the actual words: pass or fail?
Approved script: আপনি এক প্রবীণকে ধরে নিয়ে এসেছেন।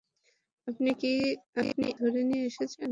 fail